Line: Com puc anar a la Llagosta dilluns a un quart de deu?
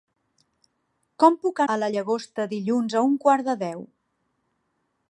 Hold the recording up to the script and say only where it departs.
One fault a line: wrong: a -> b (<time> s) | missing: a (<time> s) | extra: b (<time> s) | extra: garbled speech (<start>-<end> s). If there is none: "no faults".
missing: anar (1.6 s)